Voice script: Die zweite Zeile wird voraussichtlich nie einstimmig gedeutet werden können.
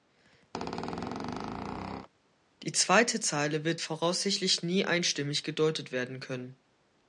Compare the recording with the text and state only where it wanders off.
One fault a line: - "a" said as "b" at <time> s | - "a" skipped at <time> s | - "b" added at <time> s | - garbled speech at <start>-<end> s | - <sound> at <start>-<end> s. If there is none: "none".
- squeak at 0.5-2.1 s